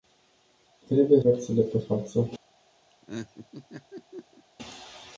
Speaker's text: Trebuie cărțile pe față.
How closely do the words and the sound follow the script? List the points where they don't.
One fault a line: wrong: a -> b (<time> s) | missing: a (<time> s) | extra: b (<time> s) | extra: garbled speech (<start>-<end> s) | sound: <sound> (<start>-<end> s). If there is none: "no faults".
sound: laugh (2.9-4.4 s)